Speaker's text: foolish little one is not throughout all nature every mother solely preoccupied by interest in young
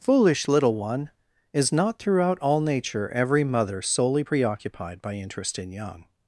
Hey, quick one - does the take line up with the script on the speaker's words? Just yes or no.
yes